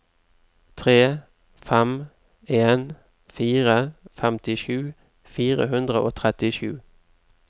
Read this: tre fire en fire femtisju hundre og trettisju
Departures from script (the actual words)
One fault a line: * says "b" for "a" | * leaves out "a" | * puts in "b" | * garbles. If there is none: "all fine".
* says "fem" for "fire"
* puts in "fire"